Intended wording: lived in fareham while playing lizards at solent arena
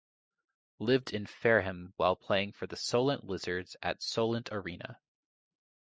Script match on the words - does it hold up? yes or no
no